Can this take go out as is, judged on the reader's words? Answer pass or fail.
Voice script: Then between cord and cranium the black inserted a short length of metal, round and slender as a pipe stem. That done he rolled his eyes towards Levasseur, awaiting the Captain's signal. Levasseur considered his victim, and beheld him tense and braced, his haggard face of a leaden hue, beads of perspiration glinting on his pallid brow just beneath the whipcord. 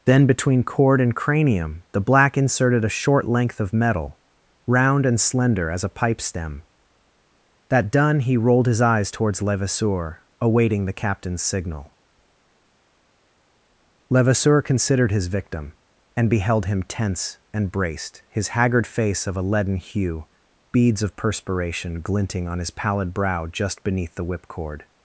pass